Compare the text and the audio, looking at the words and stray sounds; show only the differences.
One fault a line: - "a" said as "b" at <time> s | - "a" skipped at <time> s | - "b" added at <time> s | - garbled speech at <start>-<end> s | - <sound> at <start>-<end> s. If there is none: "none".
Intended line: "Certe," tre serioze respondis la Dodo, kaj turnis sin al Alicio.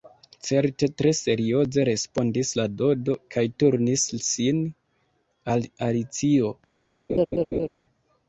- laugh at 7.1-7.7 s